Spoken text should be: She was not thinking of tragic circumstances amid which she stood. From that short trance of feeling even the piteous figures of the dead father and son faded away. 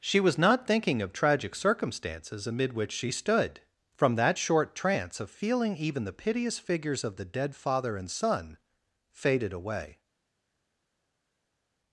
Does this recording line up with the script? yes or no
yes